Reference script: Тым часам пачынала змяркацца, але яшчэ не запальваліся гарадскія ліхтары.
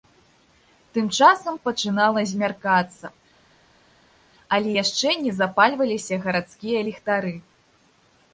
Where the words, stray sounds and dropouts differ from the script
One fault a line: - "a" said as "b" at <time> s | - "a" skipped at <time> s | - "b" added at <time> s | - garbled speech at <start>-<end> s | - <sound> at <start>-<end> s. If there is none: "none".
none